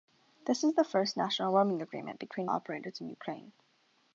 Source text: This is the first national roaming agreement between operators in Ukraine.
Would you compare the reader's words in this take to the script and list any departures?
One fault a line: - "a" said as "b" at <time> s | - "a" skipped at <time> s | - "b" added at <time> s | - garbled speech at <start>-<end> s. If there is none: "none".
none